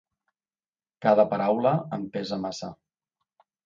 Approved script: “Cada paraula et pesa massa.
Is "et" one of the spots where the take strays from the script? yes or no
yes